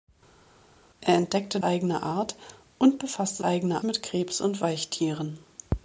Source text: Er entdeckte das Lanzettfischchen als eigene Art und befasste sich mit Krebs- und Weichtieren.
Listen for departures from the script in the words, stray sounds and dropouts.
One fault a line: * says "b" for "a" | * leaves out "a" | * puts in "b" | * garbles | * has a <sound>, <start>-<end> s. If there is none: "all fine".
* leaves out "das Lanzettfischchen als"
* says "eigene" for "sich"